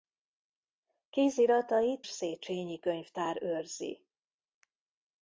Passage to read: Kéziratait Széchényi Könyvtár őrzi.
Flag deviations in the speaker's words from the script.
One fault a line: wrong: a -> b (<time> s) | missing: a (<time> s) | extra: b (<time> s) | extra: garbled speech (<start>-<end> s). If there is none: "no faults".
no faults